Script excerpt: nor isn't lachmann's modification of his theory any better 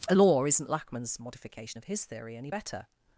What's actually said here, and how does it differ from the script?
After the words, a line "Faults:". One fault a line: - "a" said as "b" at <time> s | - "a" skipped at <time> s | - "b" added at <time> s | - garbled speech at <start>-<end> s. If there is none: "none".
nor isn't lachmann's modification of his theory any better
Faults:
none